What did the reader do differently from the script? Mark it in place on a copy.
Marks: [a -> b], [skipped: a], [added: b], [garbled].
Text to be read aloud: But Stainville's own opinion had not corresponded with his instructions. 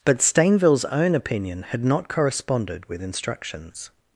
But Stainville's own opinion had not corresponded with [skipped: his] instructions.